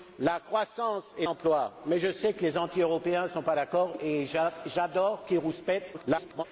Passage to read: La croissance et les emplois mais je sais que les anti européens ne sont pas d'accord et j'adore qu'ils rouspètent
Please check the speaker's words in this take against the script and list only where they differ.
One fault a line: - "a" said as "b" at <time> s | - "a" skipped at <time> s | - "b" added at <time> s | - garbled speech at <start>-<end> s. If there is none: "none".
- "les" skipped at 1.2 s
- garbled speech at 5.9-6.4 s